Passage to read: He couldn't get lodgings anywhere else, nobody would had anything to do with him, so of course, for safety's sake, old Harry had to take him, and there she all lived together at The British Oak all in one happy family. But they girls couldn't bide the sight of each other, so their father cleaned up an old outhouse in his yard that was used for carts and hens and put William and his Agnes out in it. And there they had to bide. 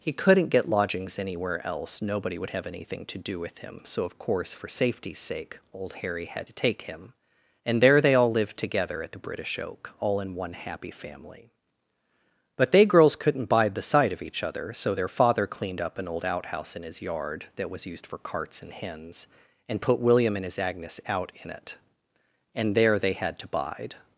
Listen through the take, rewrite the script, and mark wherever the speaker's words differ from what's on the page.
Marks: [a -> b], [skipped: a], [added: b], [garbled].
He couldn't get lodgings anywhere else, nobody would [had -> have] anything to do with him, so of course, for safety's sake, old Harry had to take him, and there [she -> they] all lived together at The British Oak all in one happy family. But they girls couldn't bide the sight of each other, so their father cleaned up an old outhouse in his yard that was used for carts and hens and put William and his Agnes out in it. And there they had to bide.